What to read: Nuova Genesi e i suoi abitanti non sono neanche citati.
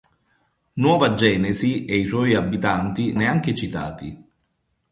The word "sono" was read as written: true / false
false